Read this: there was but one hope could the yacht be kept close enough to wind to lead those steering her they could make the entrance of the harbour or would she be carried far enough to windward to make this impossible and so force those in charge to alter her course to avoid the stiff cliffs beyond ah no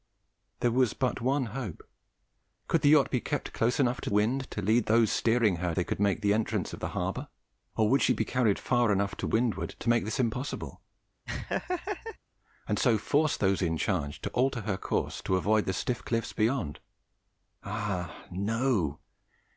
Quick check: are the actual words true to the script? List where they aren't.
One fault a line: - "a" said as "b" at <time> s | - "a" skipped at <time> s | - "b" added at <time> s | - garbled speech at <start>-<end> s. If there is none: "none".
none